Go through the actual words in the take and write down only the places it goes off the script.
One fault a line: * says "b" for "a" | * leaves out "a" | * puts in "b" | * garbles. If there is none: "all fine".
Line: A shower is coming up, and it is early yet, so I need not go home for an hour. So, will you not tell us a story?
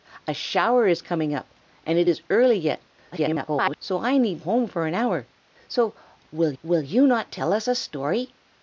* garbles
* leaves out "not go"
* puts in "will"